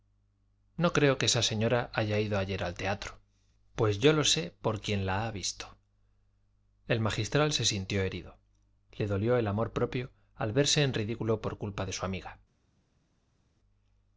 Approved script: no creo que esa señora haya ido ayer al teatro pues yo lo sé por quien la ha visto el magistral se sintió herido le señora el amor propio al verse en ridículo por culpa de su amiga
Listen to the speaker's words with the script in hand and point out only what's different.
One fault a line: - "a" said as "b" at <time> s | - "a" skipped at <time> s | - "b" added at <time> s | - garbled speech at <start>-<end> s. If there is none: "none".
- "señora" said as "dolió" at 9.1 s